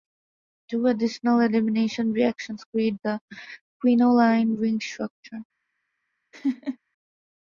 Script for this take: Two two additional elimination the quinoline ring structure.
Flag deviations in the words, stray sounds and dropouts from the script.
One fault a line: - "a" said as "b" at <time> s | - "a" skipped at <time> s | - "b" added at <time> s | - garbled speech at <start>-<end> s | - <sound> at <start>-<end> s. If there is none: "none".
- "two" skipped at 0.9 s
- "reactions create" added at 2.1 s
- laugh at 6.3-6.8 s